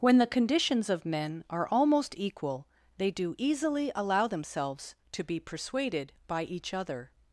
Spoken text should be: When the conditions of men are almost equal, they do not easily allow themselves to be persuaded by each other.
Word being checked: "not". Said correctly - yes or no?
no